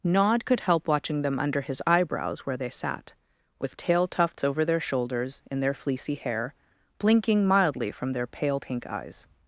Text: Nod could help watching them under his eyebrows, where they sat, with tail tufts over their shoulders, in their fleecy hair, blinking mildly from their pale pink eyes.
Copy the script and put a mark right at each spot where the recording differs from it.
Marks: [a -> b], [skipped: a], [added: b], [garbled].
Nod could help watching them under his eyebrows, where they sat, with tail tufts over their shoulders, in their fleecy hair, blinking mildly from their pale pink eyes.